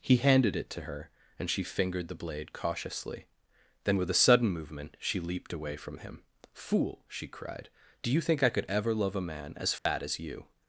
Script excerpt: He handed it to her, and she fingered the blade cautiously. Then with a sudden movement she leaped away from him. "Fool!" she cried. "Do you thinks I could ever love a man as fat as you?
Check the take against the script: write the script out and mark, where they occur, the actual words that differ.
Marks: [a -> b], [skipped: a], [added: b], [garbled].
He handed it to her, and she fingered the blade cautiously. Then with a sudden movement she leaped away from him. "Fool!" she cried. "Do you [thinks -> think] I could ever love a man as fat as you?